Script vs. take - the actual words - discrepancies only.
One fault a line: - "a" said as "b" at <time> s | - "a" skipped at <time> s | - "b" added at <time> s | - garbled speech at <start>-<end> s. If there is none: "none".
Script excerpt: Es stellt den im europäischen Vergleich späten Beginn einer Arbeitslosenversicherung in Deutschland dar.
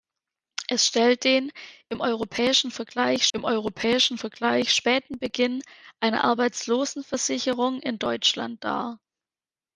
- "im europäischen Vergleich" added at 3.3 s